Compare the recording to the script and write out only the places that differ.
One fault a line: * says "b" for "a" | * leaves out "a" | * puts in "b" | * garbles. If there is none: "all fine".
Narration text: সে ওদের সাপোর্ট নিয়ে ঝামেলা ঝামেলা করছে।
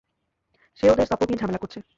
* leaves out "ঝামেলা"